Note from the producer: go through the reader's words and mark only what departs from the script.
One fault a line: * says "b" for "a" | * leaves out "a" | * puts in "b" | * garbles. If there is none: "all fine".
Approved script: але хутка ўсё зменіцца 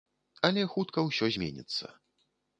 all fine